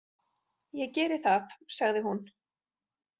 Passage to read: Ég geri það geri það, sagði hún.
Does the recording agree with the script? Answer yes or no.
no